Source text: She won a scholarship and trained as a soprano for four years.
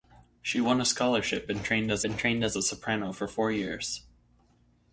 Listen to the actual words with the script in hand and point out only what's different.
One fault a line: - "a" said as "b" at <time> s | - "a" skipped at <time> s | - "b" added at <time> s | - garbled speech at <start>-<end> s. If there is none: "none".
- "and trained as" added at 2.0 s